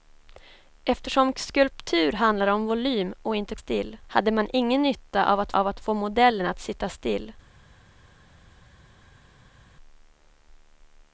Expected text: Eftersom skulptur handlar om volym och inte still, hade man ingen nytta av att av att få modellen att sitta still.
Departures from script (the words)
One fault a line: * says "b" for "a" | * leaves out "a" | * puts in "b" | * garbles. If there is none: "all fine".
all fine